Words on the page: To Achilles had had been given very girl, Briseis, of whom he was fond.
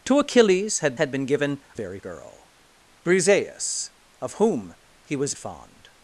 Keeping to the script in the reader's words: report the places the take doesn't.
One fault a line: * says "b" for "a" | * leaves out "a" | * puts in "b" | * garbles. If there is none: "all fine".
all fine